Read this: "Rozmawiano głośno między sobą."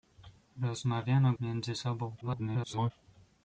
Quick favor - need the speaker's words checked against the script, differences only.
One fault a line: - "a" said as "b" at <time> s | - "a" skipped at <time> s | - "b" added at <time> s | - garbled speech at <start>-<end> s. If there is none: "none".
- "głośno" skipped at 1.3 s
- garbled speech at 2.2-2.9 s